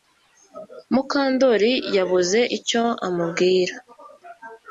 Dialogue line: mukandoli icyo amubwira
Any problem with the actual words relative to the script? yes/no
yes